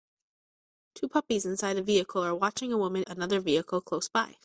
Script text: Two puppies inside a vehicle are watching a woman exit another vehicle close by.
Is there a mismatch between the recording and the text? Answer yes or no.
yes